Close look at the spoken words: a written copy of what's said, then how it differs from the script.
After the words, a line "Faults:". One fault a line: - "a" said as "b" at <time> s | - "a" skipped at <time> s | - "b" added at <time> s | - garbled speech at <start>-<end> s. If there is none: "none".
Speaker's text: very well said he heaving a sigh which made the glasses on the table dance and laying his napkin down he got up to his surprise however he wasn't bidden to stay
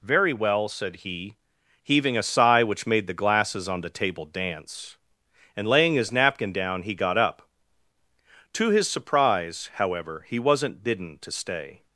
very well said he heaving a sigh which made the glasses on the table dance and laying his napkin down he got up to his surprise however he wasn't bidden to stay
Faults:
none